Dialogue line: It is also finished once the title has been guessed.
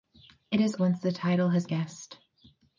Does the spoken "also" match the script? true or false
false